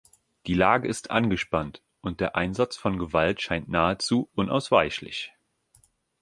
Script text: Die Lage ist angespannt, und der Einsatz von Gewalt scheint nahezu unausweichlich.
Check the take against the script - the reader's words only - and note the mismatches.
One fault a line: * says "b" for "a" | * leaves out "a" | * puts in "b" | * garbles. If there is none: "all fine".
all fine